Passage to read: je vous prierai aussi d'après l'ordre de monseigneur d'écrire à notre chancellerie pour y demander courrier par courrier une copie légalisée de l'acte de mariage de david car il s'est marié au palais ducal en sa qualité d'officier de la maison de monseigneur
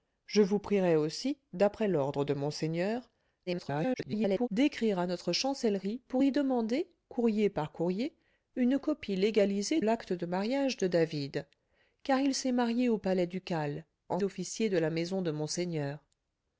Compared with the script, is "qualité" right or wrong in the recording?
wrong